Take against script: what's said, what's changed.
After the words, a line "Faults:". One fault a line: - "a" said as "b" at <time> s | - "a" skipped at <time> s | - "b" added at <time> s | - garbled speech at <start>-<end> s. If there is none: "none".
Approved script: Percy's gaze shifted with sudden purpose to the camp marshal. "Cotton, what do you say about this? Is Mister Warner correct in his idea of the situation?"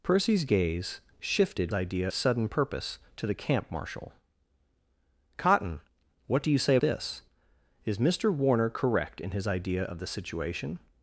Percy's gaze shifted idea sudden purpose to the camp marshal. "Cotton, what do you say this? Is Mister Warner correct in his idea of the situation?"
Faults:
- "with" said as "idea" at 1.7 s
- "about" skipped at 6.8 s